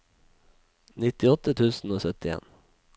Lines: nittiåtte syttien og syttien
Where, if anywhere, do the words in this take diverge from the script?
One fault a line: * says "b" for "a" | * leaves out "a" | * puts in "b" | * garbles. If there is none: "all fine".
* says "tusen" for "syttien"